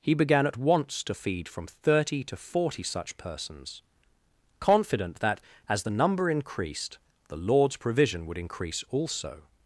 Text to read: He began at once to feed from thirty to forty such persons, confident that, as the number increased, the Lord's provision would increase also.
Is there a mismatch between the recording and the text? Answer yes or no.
no